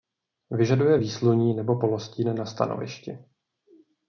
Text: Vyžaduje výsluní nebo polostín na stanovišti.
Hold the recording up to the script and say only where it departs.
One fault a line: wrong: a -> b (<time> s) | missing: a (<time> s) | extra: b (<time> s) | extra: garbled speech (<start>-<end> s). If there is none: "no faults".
no faults